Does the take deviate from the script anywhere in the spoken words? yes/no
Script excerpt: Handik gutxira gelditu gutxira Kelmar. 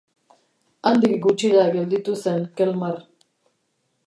yes